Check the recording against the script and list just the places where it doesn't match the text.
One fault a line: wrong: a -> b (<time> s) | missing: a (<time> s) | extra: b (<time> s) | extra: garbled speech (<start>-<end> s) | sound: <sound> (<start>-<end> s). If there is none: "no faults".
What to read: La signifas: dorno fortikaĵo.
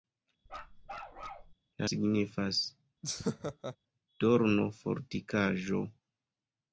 sound: bark (0.5-1.5 s)
sound: laugh (3.0-3.8 s)